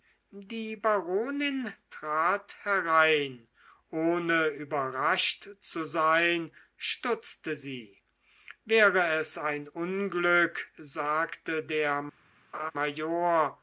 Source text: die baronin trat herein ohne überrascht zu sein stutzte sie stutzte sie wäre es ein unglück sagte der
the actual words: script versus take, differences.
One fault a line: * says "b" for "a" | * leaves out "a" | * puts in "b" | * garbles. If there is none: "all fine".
* leaves out "stutzte sie"